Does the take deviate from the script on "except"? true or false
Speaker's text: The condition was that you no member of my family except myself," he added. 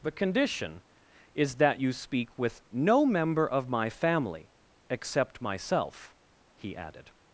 false